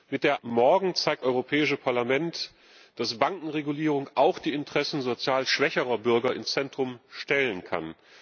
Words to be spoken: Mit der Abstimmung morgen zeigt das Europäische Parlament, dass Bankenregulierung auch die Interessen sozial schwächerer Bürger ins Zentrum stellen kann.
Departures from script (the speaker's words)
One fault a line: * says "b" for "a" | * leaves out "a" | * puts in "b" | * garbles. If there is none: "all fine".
* leaves out "Abstimmung"
* leaves out "das"